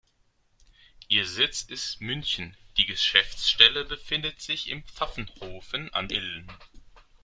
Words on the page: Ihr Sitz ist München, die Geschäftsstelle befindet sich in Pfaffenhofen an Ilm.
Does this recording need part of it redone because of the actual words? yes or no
no